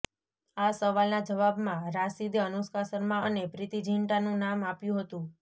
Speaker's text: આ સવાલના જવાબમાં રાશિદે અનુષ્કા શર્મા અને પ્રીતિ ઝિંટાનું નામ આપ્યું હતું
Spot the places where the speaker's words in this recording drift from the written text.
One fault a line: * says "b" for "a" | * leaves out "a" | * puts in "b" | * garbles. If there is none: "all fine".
all fine